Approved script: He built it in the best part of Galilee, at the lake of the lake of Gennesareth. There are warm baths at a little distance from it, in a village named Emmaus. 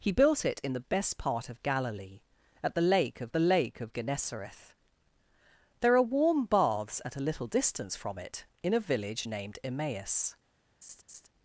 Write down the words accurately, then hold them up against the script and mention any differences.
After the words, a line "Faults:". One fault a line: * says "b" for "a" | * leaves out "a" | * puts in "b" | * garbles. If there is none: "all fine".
He built it in the best part of Galilee, at the lake of the lake of Gennesareth. There are warm baths at a little distance from it, in a village named Emmaus.
Faults:
all fine